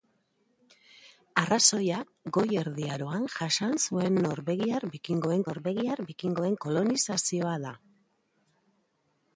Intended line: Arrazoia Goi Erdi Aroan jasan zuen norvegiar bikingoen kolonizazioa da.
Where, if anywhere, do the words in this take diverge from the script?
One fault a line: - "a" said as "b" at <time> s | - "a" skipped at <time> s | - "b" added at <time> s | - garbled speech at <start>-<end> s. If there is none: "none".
- "norvegiar bikingoen" added at 5.5 s